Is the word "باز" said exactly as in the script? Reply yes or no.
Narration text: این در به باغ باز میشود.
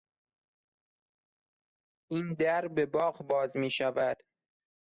yes